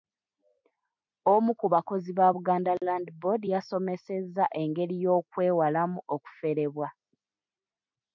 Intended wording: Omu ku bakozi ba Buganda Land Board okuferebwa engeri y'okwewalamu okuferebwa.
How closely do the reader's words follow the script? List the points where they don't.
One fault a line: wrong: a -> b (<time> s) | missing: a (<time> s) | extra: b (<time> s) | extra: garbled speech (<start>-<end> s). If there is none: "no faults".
wrong: okuferebwa -> yasomesezza (3.5 s)